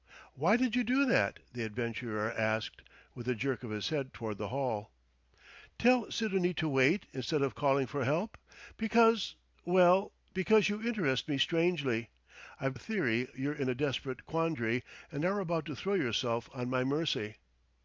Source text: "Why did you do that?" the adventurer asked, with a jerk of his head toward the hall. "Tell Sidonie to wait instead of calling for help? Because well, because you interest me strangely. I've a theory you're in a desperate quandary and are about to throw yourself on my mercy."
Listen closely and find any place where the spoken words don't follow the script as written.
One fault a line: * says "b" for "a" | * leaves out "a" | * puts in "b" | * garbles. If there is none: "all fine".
all fine